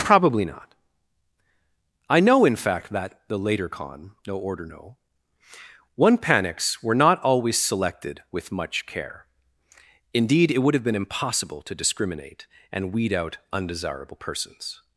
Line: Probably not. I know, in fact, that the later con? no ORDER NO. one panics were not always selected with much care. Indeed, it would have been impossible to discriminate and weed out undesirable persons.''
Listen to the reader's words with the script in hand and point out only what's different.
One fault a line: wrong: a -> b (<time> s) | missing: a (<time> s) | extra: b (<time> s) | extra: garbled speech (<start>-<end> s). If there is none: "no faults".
no faults